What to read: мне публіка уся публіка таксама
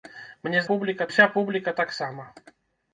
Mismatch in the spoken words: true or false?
false